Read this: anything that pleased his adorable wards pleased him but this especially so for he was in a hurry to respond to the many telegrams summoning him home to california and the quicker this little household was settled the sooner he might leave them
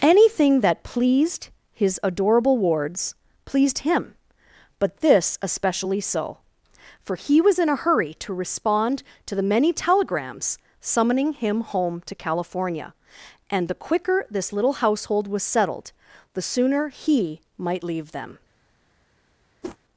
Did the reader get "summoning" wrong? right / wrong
right